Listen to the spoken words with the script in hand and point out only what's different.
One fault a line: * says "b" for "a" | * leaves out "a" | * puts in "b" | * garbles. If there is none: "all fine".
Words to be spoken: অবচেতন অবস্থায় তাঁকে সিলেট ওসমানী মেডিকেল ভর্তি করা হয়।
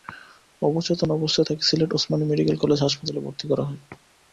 * puts in "কলেজ হাসপাতালে"